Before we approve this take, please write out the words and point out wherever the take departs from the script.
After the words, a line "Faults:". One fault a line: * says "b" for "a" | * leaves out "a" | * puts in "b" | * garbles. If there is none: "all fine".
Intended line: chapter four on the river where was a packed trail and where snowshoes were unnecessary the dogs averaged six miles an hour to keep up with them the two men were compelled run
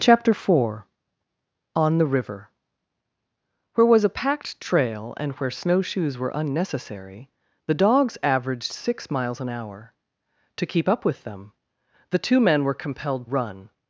chapter four on the river where was a packed trail and where snowshoes were unnecessary the dogs averaged six miles an hour to keep up with them the two men were compelled run
Faults:
all fine